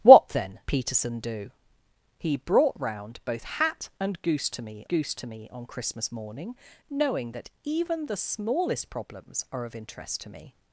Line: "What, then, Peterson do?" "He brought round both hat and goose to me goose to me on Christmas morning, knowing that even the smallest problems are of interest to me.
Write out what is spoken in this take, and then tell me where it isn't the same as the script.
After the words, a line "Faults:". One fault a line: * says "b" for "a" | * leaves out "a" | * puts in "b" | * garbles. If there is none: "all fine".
"What, then, Peterson do?" "He brought round both hat and goose to me goose to me on Christmas morning, knowing that even the smallest problems are of interest to me.
Faults:
all fine